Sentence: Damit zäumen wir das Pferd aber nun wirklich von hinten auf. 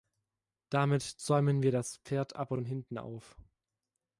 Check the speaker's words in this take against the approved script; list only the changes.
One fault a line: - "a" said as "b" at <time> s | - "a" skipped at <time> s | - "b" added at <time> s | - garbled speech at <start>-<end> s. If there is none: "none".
- "nun wirklich" skipped at 2.6 s